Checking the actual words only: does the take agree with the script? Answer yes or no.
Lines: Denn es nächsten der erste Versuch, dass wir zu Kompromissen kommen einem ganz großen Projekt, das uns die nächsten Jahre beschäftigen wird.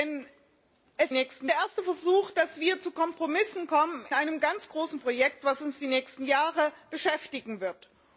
yes